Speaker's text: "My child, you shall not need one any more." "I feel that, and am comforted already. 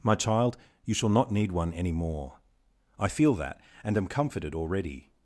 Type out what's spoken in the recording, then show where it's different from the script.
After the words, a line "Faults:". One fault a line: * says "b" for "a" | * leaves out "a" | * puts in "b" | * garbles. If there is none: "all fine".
"My child, you shall not need one any more." "I feel that, and am comforted already.
Faults:
all fine